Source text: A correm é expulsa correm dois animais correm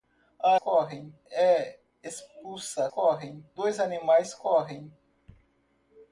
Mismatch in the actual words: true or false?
false